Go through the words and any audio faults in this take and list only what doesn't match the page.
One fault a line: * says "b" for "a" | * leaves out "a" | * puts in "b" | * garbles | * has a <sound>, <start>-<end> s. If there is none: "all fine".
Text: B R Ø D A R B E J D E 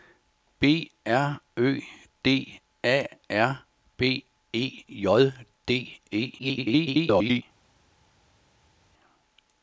* garbles